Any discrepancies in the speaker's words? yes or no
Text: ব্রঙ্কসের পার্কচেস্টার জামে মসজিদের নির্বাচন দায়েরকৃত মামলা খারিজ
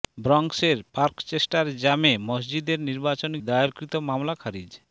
no